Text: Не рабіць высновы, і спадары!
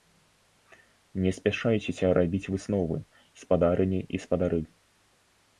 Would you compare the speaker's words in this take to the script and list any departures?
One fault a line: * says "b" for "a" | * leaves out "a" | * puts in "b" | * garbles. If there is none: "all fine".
* puts in "спяшайцеся"
* puts in "спадарыні"